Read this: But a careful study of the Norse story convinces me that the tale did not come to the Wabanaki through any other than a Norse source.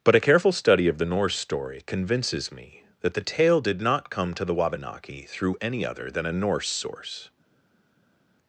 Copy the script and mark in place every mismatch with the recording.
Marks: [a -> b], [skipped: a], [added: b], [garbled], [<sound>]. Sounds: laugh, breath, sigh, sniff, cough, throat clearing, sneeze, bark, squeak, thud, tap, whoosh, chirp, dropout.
But a careful study of the Norse story convinces me that the tale did not come to the Wabanaki through any other than a Norse source.